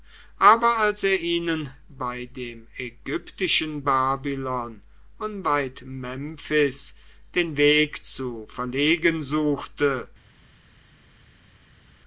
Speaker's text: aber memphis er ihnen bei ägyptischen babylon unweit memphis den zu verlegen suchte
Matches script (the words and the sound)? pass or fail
fail